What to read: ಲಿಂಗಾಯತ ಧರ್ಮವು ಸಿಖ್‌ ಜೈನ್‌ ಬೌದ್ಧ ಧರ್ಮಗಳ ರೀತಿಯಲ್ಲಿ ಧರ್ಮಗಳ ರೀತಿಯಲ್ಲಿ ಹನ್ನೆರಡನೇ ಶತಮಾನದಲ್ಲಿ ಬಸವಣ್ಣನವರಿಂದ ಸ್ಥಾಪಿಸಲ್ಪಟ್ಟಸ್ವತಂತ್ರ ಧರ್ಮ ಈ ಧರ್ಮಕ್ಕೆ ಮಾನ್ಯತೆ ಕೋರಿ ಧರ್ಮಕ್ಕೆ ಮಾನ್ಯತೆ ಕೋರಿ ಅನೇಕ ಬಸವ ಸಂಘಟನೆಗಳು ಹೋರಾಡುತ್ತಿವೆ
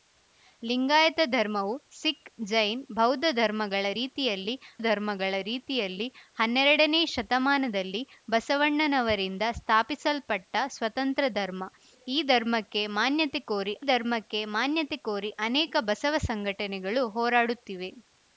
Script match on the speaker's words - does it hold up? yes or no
yes